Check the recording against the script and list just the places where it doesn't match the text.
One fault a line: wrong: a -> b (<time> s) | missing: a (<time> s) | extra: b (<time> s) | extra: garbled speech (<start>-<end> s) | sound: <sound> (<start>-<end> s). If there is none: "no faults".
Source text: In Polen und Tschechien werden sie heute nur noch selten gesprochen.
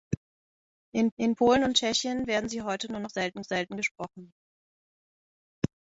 extra: in (1.2 s)
extra: selten (3.4 s)